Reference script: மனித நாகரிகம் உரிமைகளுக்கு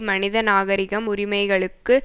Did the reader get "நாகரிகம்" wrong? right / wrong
right